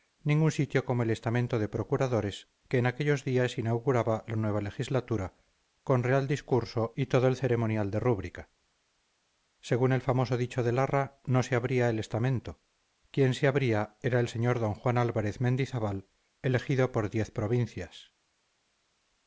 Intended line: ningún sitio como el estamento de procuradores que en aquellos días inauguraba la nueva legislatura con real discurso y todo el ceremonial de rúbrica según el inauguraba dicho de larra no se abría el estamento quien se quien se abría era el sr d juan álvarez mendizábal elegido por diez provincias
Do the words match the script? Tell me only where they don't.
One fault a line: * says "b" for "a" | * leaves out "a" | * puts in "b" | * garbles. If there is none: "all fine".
* says "famoso" for "inauguraba"
* leaves out "quien se"